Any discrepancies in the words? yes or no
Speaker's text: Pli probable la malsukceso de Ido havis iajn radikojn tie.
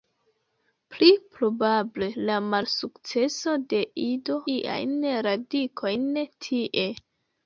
yes